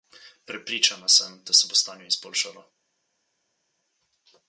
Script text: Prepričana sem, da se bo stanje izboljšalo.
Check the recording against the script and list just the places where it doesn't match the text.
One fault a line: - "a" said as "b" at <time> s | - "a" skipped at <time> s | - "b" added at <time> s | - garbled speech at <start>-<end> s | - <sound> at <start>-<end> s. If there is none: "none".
none